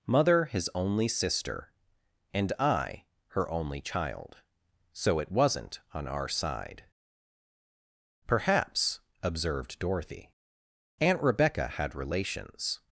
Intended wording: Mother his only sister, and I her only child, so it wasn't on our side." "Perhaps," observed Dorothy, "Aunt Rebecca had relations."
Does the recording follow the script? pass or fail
pass